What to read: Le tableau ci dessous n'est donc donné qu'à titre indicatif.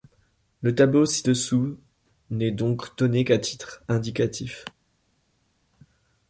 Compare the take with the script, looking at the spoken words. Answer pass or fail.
pass